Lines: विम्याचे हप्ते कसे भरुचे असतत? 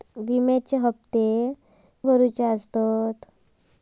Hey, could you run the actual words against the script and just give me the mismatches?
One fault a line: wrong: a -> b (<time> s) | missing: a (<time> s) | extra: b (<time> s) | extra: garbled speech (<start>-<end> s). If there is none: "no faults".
missing: कसे (1.2 s)